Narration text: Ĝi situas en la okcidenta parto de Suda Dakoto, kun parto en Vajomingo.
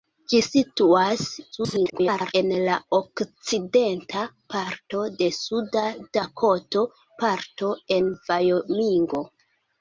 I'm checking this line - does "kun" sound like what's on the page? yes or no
no